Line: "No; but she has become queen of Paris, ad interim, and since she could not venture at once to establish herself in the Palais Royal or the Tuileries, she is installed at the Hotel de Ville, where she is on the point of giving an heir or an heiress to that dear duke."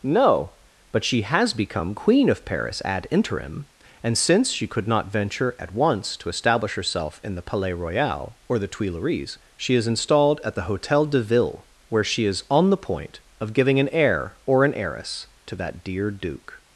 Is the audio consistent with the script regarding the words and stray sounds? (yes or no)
yes